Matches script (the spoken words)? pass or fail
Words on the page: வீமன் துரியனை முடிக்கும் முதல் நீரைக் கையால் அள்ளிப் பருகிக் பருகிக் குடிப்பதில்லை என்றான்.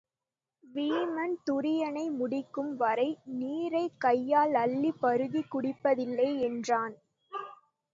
fail